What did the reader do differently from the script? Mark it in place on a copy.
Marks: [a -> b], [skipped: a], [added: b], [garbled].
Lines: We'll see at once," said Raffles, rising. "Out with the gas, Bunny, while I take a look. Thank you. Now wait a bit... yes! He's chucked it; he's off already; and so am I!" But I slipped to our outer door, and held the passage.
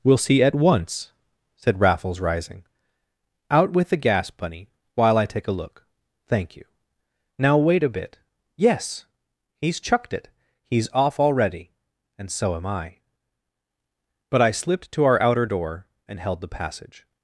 We'll see at once," said Raffles, rising. "Out with the gas, Bunny, while I take a look. Thank you. Now wait a bit... yes! He's chucked it; he's off already; and so am I!" But I slipped to our outer door, and held the passage.